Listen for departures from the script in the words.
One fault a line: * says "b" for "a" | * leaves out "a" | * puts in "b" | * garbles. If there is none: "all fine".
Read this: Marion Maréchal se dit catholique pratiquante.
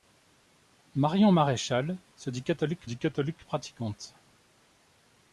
* puts in "dit catholique"